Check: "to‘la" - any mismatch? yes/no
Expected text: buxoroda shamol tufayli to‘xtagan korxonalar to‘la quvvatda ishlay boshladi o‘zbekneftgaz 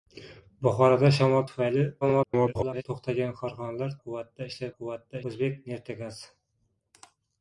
yes